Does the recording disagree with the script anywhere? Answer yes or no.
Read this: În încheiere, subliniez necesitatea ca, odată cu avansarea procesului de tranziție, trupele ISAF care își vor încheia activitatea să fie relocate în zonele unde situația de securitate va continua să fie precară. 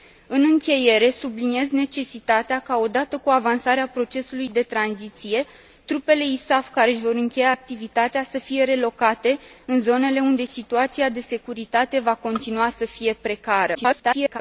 yes